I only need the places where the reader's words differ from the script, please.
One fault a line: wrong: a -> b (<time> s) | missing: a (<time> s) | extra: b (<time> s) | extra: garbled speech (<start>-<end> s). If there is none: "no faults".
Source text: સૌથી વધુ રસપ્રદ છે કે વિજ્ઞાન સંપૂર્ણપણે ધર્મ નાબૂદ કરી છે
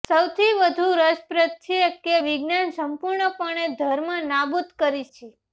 no faults